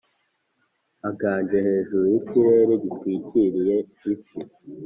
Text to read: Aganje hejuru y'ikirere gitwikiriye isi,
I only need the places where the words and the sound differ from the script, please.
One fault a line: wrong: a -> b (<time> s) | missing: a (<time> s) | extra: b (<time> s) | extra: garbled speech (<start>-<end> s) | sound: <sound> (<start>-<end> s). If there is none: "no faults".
no faults